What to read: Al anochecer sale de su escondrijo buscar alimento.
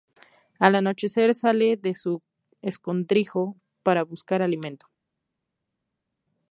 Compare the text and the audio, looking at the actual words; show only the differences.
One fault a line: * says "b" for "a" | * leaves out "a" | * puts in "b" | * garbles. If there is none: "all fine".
* puts in "para"